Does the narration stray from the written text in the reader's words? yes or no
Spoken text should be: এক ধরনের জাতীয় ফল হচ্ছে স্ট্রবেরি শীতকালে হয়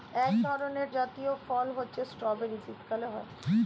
no